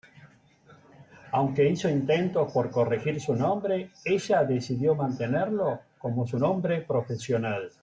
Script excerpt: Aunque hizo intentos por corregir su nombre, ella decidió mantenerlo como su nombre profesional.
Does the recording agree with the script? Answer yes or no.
yes